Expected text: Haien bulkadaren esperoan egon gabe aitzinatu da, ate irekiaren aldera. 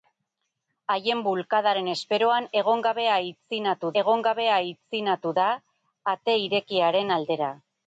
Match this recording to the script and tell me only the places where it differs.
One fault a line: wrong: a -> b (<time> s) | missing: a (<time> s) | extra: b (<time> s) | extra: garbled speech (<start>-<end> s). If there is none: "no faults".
extra: egon gabe aitzinatu (4.0 s)